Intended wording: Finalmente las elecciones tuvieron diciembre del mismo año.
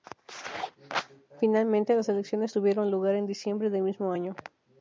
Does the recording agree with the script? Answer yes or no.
no